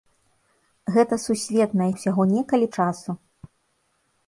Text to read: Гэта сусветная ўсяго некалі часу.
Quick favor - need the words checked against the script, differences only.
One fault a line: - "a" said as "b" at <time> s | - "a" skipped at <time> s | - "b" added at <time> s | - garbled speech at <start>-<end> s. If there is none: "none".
none